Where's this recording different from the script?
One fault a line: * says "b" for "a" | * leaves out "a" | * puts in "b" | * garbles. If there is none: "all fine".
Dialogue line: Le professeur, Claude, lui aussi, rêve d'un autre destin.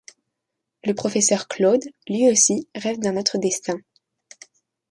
all fine